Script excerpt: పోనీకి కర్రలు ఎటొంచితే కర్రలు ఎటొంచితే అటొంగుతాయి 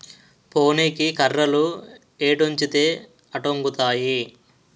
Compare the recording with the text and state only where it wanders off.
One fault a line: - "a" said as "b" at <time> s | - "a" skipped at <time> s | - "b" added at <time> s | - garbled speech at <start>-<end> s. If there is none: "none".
- "కర్రలు ఎటొంచితే" skipped at 2.9 s